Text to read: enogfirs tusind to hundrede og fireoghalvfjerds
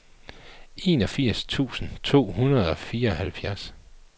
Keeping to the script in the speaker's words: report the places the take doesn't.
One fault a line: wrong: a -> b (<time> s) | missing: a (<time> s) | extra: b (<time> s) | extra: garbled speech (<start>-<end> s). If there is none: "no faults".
no faults